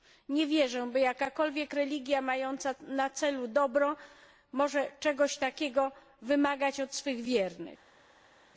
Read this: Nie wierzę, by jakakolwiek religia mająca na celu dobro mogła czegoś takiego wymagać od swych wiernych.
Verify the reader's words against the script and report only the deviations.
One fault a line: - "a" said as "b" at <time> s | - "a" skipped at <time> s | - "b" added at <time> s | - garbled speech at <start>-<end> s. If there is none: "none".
none